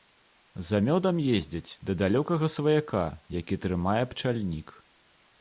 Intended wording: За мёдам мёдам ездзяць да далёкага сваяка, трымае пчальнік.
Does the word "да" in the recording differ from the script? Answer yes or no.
no